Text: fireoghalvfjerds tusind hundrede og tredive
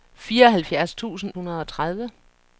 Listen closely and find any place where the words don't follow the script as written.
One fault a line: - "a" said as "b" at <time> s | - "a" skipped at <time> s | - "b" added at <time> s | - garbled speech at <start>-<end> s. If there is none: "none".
none